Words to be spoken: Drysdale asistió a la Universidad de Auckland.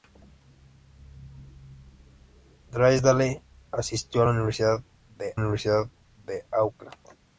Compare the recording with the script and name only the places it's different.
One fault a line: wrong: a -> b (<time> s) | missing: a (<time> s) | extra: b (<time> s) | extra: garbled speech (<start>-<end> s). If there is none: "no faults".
extra: Universidad de (5.3 s)